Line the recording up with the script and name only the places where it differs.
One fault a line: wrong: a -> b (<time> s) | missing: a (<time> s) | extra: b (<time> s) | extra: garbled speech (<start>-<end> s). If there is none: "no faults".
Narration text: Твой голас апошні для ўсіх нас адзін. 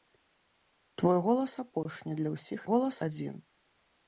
wrong: нас -> голас (2.7 s)